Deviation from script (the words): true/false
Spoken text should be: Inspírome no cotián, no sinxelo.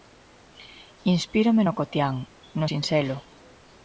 false